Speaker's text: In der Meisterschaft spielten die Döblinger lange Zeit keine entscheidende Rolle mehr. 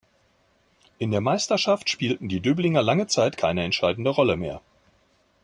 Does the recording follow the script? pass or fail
pass